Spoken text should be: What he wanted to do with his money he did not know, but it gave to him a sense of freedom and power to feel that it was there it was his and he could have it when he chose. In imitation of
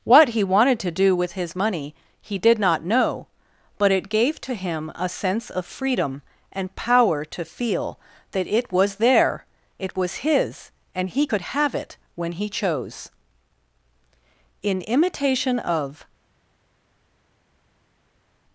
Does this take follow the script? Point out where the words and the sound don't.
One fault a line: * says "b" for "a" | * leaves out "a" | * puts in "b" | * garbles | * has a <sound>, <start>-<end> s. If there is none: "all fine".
all fine